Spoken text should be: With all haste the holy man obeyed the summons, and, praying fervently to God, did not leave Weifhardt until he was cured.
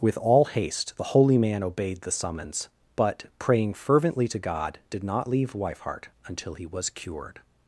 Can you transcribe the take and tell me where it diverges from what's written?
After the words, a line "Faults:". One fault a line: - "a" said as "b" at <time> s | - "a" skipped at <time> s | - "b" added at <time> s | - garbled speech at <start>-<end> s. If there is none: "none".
With all haste the holy man obeyed the summons, but, praying fervently to God, did not leave Weifhardt until he was cured.
Faults:
- "and" said as "but" at 3.0 s